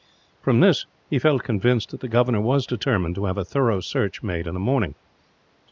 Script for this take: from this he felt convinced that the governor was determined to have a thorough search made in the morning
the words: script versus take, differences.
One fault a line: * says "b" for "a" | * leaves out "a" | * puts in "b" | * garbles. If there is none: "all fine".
all fine